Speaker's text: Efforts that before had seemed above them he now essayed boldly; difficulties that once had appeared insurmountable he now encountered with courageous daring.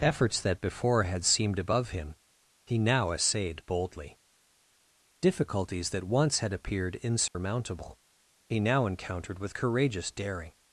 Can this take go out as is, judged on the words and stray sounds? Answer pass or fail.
fail